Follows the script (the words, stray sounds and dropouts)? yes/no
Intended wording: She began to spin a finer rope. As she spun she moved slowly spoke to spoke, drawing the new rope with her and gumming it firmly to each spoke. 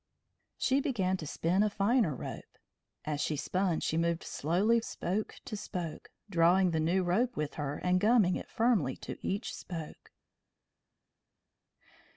yes